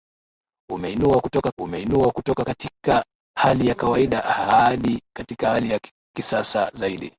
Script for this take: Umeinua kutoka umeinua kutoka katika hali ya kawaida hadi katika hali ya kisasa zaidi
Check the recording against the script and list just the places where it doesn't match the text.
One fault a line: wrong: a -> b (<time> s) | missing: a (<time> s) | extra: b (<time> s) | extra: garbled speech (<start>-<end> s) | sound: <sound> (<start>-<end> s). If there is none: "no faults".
no faults